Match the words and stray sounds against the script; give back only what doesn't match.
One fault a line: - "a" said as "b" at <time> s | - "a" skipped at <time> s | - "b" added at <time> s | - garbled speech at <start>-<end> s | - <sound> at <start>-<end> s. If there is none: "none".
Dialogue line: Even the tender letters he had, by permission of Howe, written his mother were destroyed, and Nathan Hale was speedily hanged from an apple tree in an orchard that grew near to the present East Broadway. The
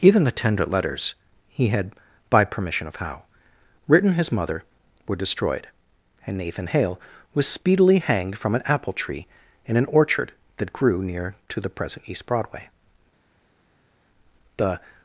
none